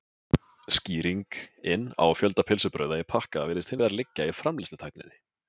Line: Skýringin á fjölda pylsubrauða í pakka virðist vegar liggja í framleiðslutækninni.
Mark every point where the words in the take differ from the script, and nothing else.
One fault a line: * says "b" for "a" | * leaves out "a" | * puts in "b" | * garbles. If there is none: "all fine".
all fine